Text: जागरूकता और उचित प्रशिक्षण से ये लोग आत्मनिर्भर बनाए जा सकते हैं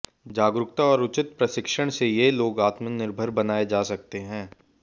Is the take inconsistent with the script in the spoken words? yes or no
no